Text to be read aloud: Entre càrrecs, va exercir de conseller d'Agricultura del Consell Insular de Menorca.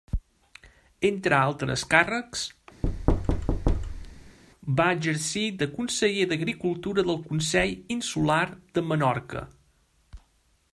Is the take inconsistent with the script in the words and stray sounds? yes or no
yes